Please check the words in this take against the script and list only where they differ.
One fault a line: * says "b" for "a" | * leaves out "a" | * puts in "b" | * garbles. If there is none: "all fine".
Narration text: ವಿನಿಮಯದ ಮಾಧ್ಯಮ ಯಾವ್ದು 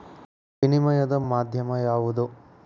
all fine